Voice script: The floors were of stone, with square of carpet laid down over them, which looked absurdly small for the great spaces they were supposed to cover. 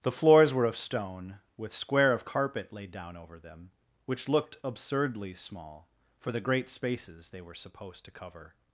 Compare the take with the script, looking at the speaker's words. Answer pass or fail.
pass